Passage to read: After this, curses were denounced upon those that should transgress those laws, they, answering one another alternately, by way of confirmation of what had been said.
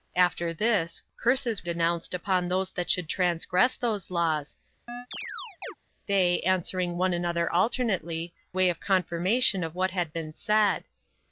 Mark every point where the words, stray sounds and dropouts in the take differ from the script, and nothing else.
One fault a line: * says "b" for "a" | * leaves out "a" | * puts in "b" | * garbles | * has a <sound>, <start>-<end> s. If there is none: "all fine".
* leaves out "were"
* has a chirp, 4.9-5.7 s
* leaves out "by"